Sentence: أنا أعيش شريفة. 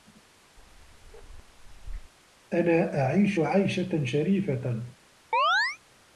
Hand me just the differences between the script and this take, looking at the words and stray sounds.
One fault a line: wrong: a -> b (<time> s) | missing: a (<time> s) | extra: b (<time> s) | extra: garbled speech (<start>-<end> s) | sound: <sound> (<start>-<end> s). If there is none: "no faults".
sound: bark (0.6-2.1 s)
extra: عيشة (3.4 s)
sound: chirp (5.3-5.8 s)